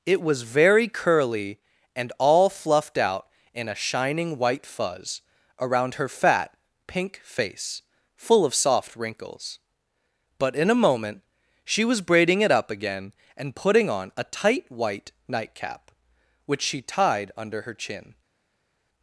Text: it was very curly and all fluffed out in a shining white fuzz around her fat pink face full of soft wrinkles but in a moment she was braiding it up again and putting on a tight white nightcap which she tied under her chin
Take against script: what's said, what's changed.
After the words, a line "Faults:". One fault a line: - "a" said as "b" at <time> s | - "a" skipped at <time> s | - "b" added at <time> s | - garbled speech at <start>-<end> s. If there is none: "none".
it was very curly and all fluffed out in a shining white fuzz around her fat pink face full of soft wrinkles but in a moment she was braiding it up again and putting on a tight white nightcap which she tied under her chin
Faults:
none